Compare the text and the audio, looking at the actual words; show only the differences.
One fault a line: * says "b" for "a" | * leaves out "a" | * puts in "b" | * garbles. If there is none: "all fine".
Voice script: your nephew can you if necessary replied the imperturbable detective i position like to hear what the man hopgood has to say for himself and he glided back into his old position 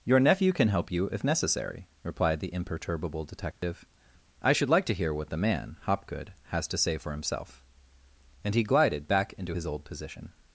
* puts in "help"
* says "should" for "position"